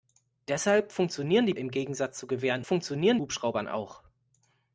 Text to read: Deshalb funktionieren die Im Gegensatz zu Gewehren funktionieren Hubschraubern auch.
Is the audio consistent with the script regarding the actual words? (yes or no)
yes